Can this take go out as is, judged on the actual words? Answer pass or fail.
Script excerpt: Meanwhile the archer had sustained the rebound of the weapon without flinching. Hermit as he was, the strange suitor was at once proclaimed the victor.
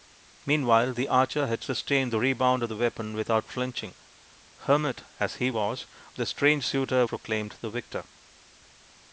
fail